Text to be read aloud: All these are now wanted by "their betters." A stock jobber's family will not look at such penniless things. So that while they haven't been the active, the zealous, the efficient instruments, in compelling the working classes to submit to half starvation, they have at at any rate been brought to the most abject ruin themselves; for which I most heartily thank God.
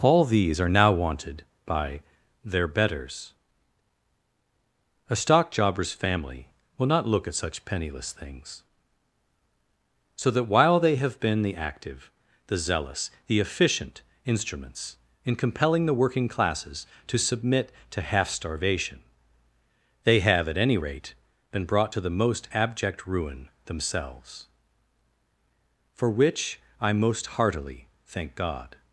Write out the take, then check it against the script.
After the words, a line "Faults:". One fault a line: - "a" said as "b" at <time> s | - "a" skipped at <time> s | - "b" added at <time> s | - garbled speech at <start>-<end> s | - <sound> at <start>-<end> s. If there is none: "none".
All these are now wanted by "their betters." A stock jobber's family will not look at such penniless things. So that while they have been the active, the zealous, the efficient instruments, in compelling the working classes to submit to half starvation, they have at any rate been brought to the most abject ruin themselves; for which I most heartily thank God.
Faults:
- "haven't" said as "have" at 10.9 s
- "at" skipped at 20.6 s